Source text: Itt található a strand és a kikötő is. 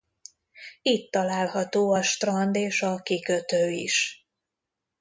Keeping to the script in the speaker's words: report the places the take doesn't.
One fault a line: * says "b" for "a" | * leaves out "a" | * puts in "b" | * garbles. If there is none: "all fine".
all fine